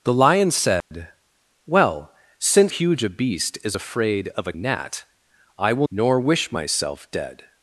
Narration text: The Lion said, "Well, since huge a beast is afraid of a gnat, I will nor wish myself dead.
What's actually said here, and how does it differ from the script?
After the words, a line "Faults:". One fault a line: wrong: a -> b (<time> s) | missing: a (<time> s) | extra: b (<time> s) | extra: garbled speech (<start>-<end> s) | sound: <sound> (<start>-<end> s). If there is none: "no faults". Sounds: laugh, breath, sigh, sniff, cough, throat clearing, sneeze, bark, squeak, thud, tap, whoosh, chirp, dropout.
The Lion said, "Well, since huge a beast is afraid of a gnat, I will nor wish myself dead.
Faults:
sound: dropout (0.8-0.9 s)